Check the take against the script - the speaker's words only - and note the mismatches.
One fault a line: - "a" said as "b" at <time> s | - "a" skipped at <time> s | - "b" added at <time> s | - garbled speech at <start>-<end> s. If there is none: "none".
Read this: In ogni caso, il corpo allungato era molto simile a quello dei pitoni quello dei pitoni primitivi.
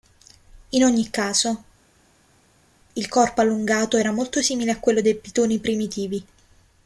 - "quello dei pitoni" skipped at 5.6 s